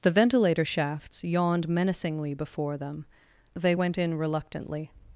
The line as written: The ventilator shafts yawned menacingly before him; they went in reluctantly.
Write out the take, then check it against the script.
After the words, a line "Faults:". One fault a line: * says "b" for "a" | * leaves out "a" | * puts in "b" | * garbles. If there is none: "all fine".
The ventilator shafts yawned menacingly before them; they went in reluctantly.
Faults:
* says "them" for "him"